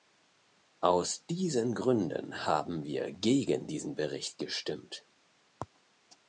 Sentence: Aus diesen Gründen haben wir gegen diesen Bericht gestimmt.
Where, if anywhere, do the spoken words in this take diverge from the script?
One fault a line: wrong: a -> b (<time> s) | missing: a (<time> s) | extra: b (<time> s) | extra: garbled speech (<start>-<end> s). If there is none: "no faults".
no faults